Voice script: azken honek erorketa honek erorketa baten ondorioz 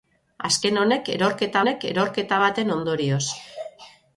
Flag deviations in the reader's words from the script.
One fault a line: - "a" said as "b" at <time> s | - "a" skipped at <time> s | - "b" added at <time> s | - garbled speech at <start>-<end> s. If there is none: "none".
none